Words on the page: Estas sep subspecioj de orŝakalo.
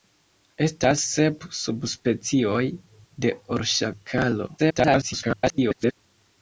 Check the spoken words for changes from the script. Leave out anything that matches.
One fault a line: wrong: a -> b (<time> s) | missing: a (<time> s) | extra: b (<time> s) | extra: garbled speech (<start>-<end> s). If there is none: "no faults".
extra: garbled speech (4.6-6.0 s)